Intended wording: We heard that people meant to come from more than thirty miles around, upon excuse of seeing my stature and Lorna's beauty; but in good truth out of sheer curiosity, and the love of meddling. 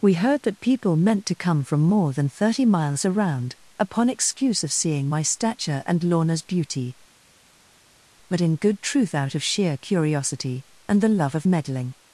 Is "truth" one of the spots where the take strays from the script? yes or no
no